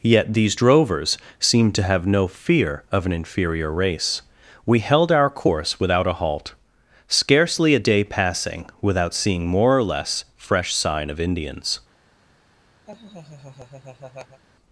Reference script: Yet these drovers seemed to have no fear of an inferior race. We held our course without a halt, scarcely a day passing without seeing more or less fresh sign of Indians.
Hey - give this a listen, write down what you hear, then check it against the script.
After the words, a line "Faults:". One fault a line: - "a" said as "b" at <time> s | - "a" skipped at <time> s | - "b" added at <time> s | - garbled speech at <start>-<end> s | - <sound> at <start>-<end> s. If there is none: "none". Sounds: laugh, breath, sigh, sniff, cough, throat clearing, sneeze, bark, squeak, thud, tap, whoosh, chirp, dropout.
Yet these drovers seemed to have no fear of an inferior race. We held our course without a halt, scarcely a day passing without seeing more or less fresh sign of Indians.
Faults:
- laugh at 12.9-14.4 s